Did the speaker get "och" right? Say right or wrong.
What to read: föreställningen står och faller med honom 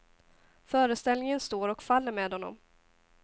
right